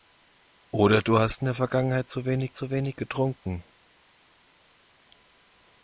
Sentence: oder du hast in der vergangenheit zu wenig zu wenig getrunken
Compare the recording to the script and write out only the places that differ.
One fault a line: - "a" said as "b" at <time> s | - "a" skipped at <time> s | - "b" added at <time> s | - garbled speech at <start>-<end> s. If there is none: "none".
none